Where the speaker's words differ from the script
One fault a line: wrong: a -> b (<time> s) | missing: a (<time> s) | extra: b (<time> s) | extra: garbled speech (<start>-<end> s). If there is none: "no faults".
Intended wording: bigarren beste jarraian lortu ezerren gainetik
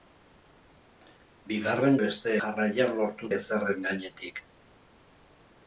no faults